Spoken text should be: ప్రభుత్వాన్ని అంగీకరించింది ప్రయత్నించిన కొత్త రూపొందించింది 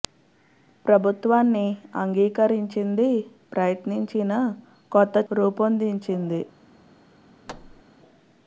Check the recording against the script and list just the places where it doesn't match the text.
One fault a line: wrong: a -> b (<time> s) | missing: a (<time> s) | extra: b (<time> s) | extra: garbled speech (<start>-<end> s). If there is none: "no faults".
no faults